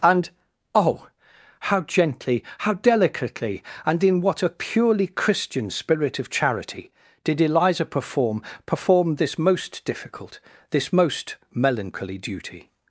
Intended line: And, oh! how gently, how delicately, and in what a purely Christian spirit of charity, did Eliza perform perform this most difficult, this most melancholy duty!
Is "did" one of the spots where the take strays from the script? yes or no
no